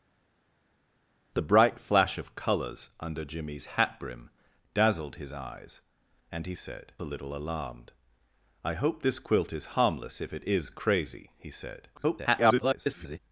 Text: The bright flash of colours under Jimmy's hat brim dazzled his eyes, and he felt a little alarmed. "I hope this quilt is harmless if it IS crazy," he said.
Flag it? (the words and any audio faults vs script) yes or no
yes